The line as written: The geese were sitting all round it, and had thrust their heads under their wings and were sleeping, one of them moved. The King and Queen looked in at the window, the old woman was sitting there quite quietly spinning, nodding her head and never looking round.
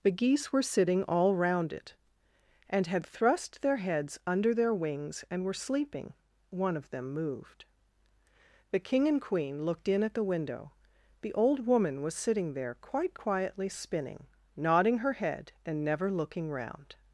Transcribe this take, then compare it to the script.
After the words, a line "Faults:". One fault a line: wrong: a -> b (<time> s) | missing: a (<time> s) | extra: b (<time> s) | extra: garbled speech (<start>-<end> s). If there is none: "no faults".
The geese were sitting all round it, and had thrust their heads under their wings and were sleeping, one of them moved. The King and Queen looked in at the window, the old woman was sitting there quite quietly spinning, nodding her head and never looking round.
Faults:
no faults